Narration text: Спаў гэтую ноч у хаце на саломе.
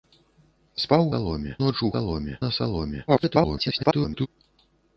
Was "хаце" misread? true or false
true